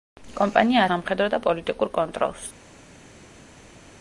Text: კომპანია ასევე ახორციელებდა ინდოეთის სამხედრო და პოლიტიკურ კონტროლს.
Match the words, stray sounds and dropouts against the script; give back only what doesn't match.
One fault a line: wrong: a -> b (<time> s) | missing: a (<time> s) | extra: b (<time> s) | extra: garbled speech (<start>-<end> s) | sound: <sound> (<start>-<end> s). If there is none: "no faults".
missing: ასევე ახორციელებდა ინდოეთის (0.8 s)